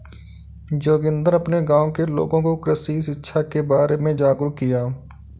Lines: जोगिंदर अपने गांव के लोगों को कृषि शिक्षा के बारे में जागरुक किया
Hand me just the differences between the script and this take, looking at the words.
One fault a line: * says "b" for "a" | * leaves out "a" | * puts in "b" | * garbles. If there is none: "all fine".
all fine